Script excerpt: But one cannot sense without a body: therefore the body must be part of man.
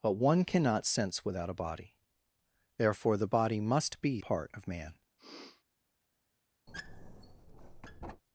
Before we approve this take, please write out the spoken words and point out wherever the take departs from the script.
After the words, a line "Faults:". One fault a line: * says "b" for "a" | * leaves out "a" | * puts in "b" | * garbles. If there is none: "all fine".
But one cannot sense without a body: therefore the body must be part of man.
Faults:
all fine